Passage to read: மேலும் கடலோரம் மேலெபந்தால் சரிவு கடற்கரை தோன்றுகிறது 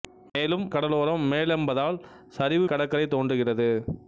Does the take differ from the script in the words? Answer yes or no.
no